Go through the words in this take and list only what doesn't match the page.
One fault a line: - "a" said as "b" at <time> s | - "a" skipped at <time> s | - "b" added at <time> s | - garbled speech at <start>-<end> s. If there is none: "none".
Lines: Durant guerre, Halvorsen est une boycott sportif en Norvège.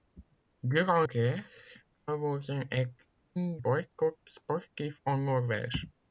none